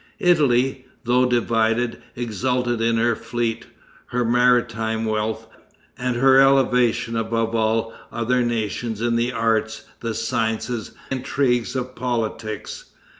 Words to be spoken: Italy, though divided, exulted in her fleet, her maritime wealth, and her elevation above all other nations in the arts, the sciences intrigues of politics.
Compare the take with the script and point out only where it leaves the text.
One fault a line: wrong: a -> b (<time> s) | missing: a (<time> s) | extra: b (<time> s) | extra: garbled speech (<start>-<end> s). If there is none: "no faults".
no faults